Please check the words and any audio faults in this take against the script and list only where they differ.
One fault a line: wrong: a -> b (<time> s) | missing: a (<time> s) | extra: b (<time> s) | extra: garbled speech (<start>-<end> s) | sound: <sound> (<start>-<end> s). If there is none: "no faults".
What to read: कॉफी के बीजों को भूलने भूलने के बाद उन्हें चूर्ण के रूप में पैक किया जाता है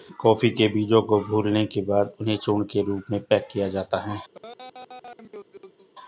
missing: भूलने (1.6 s)
sound: laugh (4.3-5.9 s)